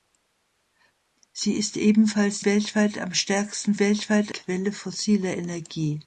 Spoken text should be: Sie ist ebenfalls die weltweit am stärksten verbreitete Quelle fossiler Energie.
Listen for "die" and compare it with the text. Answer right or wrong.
wrong